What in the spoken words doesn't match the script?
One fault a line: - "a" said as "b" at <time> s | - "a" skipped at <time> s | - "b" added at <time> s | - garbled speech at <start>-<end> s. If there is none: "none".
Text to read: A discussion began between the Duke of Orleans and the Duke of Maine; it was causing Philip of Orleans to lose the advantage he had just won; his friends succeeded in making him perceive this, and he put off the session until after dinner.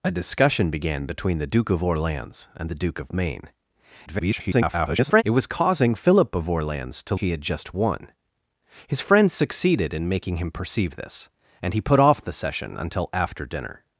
- garbled speech at 4.1-5.2 s
- "lose the advantage" skipped at 7.1 s